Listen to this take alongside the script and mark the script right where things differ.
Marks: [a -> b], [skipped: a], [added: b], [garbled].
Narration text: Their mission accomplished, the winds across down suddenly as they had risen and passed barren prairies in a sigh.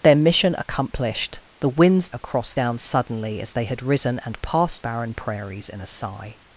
Their mission accomplished, the winds across down suddenly as they had risen and passed barren prairies in a sigh.